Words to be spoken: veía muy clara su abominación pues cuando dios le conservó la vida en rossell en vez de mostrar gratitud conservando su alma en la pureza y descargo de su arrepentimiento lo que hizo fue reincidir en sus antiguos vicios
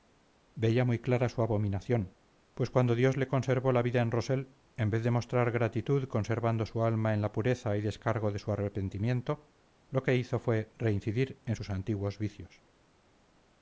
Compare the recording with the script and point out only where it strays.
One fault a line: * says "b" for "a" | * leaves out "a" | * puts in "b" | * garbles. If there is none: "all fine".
all fine